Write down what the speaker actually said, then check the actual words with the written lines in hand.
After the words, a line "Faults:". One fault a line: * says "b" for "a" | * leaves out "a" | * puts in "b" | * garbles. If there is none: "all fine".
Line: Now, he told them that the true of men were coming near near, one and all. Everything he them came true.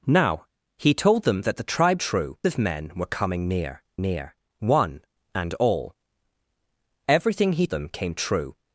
Now, he told them that the true of men were coming near near, one and all. Everything he them came true.
Faults:
all fine